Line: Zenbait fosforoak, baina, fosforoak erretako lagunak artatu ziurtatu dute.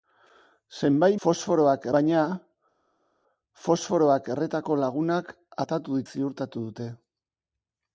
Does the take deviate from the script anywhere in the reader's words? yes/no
no